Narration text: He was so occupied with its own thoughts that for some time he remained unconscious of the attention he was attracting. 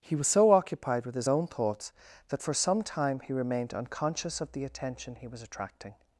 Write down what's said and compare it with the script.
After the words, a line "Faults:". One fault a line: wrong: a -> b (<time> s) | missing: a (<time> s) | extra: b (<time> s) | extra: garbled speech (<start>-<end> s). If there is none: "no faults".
He was so occupied with his own thoughts that for some time he remained unconscious of the attention he was attracting.
Faults:
wrong: its -> his (1.1 s)